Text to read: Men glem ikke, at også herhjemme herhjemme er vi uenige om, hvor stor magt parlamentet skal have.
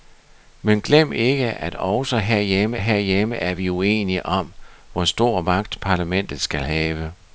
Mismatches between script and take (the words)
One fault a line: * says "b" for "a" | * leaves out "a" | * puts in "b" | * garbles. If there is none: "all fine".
all fine